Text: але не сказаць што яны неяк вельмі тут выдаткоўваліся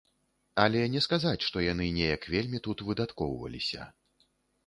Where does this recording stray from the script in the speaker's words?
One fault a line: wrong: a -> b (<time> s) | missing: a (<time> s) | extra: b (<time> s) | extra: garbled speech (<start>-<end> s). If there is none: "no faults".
no faults